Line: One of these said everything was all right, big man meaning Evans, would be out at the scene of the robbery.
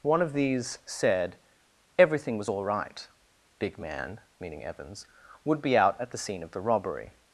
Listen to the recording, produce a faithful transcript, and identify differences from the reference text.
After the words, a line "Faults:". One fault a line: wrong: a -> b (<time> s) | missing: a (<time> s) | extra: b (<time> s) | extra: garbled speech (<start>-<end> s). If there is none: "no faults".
One of these said everything was all right, big man meaning Evans, would be out at the scene of the robbery.
Faults:
no faults